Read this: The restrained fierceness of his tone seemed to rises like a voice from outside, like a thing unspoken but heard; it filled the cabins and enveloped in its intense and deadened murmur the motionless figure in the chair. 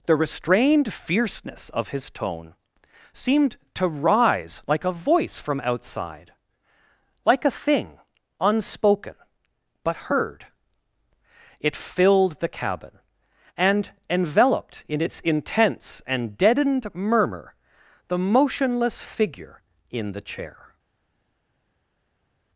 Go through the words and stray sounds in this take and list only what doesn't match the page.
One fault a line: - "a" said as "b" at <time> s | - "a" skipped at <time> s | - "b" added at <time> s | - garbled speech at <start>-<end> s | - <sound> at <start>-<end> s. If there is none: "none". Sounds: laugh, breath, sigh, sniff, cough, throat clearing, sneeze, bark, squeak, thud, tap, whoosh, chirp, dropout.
- "rises" said as "rise" at 3.9 s
- "cabins" said as "cabin" at 12.5 s